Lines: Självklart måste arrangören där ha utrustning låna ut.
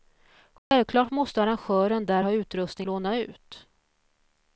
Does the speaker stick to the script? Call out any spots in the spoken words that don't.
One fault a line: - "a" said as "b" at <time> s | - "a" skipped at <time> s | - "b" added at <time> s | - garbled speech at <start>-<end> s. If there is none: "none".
none